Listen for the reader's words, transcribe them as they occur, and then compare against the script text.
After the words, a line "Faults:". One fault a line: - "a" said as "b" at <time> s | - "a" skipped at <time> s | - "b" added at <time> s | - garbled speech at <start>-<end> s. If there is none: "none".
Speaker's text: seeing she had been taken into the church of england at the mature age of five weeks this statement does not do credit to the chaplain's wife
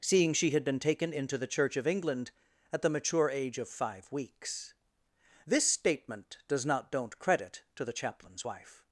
seeing she had been taken into the church of england at the mature age of five weeks this statement does not don't credit to the chaplain's wife
Faults:
- "do" said as "don't" at 6.9 s